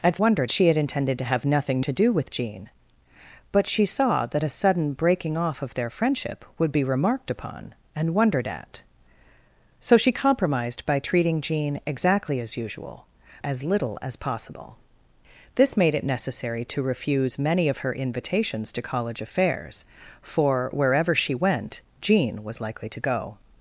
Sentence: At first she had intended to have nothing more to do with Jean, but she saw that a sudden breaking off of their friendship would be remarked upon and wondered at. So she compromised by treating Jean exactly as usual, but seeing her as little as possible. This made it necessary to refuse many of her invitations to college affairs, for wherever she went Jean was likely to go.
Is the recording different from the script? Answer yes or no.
yes